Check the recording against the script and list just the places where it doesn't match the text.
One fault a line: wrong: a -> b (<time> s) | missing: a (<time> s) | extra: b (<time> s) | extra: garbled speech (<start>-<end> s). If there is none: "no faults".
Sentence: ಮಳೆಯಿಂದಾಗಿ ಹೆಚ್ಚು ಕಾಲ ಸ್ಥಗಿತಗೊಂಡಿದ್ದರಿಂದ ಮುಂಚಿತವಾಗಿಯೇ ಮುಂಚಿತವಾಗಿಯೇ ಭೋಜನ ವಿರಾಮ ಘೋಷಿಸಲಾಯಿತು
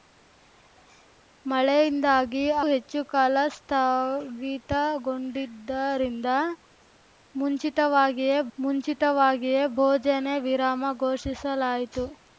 no faults